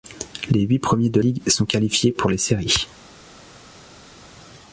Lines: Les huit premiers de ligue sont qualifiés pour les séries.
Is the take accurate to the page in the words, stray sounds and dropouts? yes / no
yes